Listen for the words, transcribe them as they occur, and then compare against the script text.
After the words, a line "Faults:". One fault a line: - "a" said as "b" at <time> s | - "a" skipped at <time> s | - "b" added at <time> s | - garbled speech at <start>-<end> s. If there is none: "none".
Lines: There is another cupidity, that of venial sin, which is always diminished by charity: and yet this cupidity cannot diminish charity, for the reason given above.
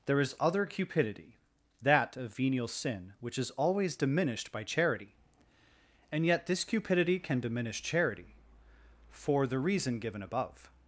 There is other cupidity, that of venial sin, which is always diminished by charity: and yet this cupidity can diminish charity, for the reason given above.
Faults:
- "another" said as "other" at 0.4 s
- "cannot" said as "can" at 7.2 s